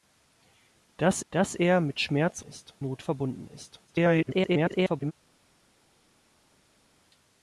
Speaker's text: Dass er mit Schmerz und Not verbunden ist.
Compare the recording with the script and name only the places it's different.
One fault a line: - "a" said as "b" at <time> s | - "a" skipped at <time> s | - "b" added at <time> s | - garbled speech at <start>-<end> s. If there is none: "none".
- "dass" added at 1.3 s
- "und" said as "ist" at 2.5 s
- garbled speech at 3.9-5.1 s